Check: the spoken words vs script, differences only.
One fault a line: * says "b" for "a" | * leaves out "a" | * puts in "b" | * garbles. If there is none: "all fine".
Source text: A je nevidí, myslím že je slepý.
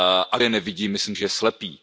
all fine